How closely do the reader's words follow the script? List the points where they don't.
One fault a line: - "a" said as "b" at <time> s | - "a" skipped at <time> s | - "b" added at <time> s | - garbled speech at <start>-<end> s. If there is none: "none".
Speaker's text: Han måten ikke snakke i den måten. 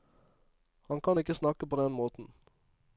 - "måten" said as "kan" at 1.0 s
- "i" said as "på" at 1.7 s